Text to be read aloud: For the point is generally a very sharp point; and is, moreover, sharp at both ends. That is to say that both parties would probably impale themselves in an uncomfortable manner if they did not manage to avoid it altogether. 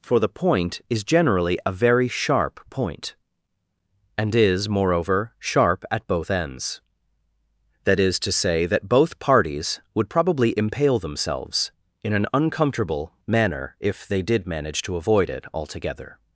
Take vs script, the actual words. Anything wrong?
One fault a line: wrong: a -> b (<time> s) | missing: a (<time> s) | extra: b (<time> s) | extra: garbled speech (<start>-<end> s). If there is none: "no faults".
missing: not (14.5 s)